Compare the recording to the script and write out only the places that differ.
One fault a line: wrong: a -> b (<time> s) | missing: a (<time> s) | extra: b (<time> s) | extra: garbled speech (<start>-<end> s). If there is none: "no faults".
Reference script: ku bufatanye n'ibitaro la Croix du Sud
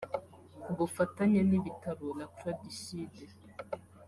no faults